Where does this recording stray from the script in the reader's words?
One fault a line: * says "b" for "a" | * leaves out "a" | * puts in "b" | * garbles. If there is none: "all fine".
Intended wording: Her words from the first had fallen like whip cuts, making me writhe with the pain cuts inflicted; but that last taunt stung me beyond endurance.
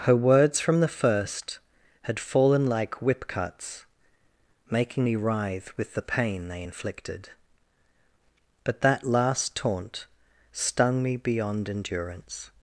* says "they" for "cuts"